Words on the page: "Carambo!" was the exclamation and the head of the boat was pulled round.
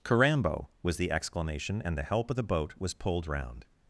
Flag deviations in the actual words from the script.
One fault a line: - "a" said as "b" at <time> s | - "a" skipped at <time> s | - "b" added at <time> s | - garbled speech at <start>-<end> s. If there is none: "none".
- "head" said as "help" at 2.0 s